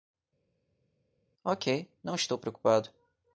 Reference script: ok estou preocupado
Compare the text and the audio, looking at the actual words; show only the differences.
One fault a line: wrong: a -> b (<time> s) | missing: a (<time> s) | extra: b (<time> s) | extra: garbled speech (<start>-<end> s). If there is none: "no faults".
extra: não (2.0 s)